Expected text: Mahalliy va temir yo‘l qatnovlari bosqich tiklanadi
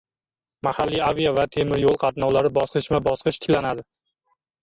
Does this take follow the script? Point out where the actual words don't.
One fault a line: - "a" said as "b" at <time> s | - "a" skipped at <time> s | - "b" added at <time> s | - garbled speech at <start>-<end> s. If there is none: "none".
- "avia" added at 1.1 s
- "bosqichma" added at 2.6 s